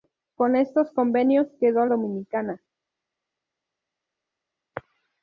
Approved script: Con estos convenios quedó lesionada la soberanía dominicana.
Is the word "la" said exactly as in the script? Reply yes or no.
no